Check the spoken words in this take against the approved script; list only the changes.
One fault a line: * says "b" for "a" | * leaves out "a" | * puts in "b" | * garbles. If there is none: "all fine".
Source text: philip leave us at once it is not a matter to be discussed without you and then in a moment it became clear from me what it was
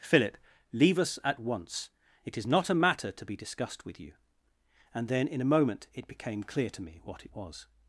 * says "with" for "without"
* says "to" for "from"